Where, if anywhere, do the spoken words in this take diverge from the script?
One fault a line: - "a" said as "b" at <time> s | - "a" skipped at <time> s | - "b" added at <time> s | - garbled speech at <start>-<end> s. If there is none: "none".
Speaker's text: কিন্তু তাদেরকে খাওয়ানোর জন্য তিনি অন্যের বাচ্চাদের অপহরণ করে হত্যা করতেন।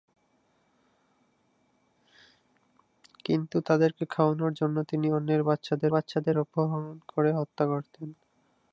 - "বাচ্চাদের" added at 5.9 s